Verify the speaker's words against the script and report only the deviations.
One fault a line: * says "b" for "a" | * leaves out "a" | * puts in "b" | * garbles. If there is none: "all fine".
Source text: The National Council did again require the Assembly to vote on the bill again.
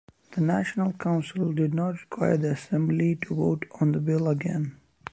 * says "not" for "again"